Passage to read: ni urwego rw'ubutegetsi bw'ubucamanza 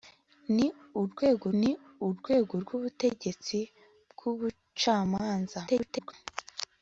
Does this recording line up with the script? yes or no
no